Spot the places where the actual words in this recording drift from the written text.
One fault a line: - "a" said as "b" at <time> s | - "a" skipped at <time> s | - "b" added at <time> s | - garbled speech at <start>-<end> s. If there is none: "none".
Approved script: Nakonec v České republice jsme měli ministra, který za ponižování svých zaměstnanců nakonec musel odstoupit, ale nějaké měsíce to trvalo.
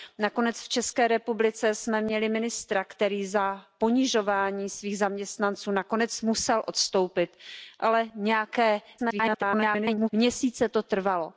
- garbled speech at 9.0-10.1 s